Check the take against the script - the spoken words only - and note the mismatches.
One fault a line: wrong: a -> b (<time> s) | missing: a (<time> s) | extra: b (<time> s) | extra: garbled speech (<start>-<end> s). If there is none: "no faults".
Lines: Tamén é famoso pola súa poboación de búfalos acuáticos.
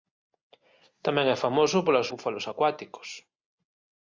missing: súa poboación de (2.1 s)